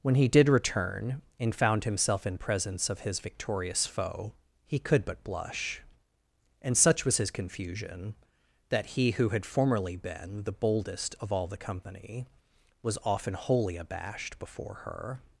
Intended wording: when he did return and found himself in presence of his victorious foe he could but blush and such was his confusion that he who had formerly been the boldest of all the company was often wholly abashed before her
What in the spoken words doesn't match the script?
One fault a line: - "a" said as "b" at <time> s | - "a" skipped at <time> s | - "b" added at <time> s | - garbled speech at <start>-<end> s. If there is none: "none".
none